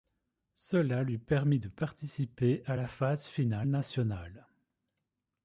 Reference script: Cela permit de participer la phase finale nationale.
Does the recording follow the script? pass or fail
fail